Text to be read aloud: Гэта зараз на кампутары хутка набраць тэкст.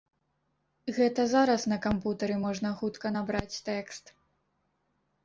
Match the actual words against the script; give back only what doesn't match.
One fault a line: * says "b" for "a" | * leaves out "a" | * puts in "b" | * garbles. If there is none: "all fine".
* puts in "можна"